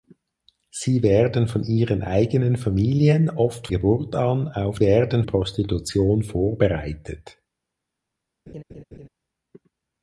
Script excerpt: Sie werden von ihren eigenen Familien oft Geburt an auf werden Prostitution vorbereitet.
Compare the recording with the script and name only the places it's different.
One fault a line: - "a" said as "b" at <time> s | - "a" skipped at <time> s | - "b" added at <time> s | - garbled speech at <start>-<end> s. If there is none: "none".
none